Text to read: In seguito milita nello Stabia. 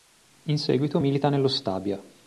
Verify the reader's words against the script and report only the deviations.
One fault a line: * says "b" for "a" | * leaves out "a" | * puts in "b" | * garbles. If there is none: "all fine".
all fine